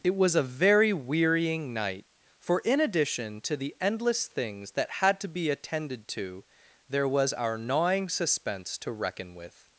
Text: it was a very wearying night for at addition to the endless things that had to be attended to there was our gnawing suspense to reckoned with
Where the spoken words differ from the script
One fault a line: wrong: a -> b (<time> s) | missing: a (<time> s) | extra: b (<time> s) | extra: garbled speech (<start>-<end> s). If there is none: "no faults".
wrong: at -> in (2.6 s)
wrong: reckoned -> reckon (8.9 s)